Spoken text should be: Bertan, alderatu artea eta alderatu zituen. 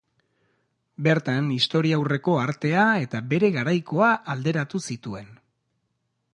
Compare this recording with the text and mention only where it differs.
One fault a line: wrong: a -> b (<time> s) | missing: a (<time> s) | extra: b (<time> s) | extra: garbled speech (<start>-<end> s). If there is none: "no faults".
wrong: alderatu -> historiaurreko (1.6 s)
extra: bere garaikoa (3.4 s)